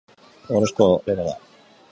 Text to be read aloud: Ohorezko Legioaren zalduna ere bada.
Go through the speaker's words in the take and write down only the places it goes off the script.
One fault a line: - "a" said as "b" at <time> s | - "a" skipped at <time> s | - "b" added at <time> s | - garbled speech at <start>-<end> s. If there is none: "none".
- "Legioaren zalduna" skipped at 0.9 s